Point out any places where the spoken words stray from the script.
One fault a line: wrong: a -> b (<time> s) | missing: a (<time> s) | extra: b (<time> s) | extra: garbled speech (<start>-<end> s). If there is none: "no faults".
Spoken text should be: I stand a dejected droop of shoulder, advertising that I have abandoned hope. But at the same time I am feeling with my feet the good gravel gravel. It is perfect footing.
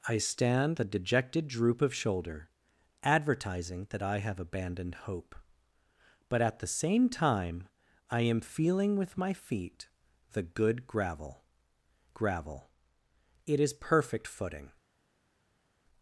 no faults